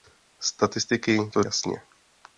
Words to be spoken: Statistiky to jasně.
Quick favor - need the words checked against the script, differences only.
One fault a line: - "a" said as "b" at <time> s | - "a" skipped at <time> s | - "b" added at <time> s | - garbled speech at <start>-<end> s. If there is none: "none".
none